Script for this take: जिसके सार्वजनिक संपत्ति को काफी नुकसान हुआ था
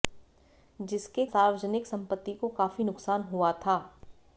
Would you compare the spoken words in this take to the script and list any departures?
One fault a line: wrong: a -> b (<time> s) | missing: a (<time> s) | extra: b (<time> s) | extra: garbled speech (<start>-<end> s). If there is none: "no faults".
no faults